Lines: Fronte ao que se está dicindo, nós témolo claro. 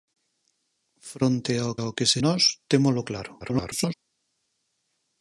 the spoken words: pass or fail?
fail